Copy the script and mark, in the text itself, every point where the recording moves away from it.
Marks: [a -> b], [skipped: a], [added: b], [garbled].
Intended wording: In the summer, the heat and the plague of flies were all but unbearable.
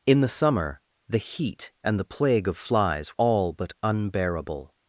In the summer, the heat and the plague of flies [skipped: were] all but unbearable.